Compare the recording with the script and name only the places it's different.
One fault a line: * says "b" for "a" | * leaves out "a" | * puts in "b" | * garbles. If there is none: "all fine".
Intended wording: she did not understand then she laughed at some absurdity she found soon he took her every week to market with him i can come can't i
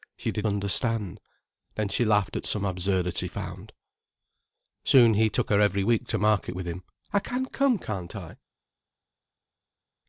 * leaves out "not"
* leaves out "she"